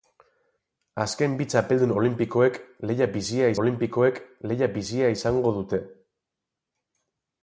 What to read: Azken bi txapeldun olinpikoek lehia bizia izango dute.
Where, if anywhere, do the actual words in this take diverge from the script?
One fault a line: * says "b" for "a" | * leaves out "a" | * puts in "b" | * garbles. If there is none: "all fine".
* puts in "olinpikoek lehia bizia"